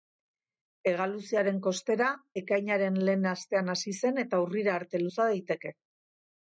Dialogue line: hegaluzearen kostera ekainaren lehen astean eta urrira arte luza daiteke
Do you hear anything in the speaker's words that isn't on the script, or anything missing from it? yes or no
yes